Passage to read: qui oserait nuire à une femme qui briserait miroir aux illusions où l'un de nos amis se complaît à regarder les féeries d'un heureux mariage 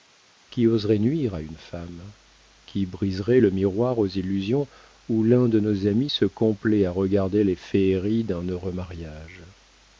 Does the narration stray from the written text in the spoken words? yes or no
yes